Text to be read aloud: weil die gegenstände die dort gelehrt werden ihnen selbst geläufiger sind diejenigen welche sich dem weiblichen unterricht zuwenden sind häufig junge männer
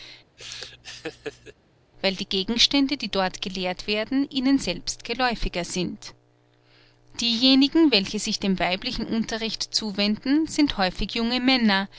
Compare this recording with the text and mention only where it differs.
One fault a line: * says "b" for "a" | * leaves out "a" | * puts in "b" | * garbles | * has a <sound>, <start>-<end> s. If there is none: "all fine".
* has a laugh, 0.4-1.5 s